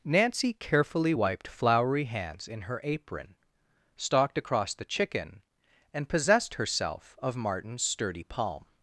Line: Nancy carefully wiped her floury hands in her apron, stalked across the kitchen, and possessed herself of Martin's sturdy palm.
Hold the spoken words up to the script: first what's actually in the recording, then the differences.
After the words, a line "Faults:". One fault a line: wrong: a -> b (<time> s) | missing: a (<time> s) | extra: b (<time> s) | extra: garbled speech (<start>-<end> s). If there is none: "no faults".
Nancy carefully wiped floury hands in her apron, stalked across the chicken, and possessed herself of Martin's sturdy palm.
Faults:
missing: her (1.5 s)
wrong: kitchen -> chicken (4.8 s)